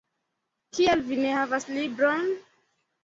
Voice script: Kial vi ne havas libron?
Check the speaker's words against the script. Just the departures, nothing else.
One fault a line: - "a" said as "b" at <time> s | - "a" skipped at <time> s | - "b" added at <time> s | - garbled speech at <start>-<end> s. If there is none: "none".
none